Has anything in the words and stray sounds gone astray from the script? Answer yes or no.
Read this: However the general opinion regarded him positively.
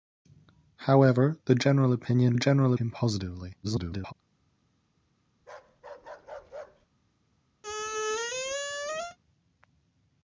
yes